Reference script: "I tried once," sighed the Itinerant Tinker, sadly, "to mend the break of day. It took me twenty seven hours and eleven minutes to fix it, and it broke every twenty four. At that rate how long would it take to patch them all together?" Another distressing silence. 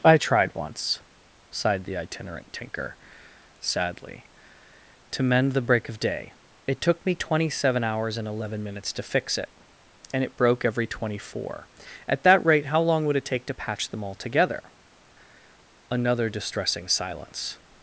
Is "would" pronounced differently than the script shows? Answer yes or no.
no